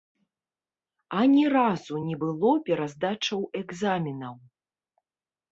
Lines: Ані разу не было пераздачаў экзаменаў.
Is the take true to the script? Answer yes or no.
yes